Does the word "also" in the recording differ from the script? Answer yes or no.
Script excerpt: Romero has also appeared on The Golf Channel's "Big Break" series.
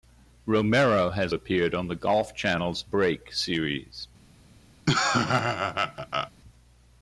yes